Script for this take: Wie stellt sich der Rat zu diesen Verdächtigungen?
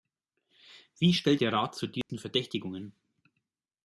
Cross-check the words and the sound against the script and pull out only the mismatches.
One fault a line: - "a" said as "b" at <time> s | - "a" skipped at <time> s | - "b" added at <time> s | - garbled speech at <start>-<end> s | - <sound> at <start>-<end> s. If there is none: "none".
- "sich" skipped at 1.4 s
- dropout at 2.0-2.1 s